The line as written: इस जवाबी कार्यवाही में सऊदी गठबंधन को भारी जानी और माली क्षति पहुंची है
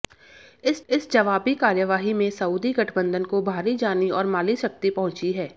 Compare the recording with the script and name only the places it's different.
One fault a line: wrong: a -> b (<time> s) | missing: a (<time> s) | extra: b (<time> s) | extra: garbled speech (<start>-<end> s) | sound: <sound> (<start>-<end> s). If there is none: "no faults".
extra: इस (0.9 s)